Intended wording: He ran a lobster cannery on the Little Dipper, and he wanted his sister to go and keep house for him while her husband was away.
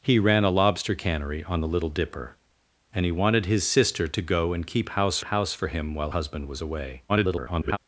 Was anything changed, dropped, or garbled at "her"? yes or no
yes